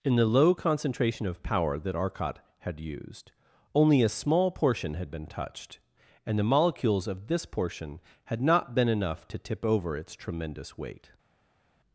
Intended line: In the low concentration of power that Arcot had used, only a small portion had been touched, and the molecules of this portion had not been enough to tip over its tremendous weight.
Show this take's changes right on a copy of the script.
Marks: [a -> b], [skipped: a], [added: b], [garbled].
In the low concentration of power that Arcot had used, only a small portion had been touched, and the molecules of this portion had not been enough to tip over its tremendous weight.